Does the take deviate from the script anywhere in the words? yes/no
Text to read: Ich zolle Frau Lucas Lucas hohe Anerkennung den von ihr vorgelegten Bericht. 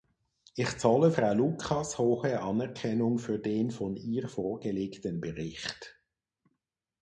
yes